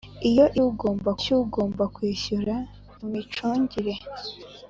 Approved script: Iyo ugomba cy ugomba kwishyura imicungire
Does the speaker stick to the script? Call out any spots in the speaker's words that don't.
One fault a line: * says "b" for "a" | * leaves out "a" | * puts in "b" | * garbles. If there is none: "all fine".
all fine